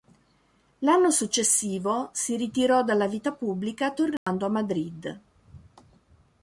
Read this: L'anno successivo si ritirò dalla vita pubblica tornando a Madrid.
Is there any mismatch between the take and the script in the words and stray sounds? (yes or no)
yes